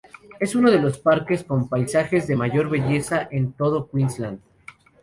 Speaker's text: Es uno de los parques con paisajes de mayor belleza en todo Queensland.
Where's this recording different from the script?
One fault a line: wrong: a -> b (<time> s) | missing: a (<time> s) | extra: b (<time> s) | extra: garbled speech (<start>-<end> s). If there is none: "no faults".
no faults